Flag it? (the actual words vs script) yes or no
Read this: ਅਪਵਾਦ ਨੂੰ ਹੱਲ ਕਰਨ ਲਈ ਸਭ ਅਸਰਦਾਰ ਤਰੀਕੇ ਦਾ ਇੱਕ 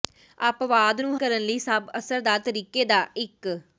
yes